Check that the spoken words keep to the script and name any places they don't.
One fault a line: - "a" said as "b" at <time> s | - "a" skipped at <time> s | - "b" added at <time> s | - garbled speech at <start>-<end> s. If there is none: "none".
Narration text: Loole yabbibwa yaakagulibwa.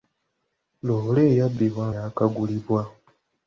none